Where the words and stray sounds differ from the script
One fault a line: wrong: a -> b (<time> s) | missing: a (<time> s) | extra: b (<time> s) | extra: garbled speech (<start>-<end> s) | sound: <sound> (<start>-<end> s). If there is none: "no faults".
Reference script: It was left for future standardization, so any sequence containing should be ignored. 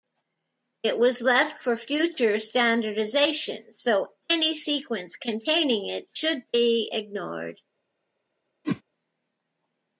extra: it (5.8 s)
sound: whoosh (8.6-8.8 s)